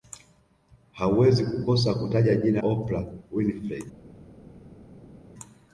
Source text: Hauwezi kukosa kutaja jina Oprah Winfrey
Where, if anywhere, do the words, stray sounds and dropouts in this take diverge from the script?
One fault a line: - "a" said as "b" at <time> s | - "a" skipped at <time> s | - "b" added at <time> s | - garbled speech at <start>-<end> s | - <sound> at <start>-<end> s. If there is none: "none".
none